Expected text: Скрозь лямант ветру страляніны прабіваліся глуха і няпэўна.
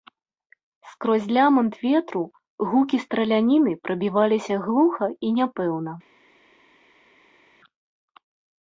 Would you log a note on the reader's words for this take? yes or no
yes